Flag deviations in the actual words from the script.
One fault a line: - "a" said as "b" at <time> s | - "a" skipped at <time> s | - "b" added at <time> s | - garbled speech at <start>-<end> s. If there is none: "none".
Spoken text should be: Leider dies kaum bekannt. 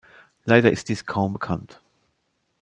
- "ist" added at 0.7 s